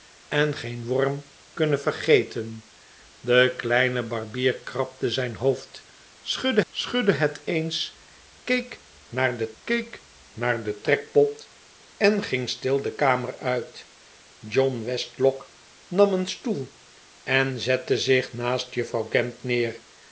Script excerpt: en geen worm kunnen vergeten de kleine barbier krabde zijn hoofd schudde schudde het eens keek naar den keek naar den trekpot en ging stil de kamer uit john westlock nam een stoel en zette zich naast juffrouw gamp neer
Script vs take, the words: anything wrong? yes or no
no